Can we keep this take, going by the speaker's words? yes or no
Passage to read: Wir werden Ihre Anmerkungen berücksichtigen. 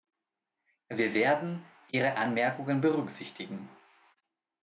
yes